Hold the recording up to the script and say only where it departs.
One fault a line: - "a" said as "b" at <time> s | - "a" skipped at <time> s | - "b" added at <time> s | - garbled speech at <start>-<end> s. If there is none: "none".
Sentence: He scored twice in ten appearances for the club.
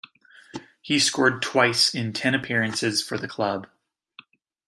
none